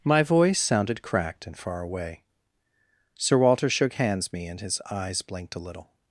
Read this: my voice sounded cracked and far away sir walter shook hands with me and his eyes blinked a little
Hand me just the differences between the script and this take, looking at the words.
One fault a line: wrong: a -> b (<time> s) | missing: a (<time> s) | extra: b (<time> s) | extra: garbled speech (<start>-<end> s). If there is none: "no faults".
missing: with (4.3 s)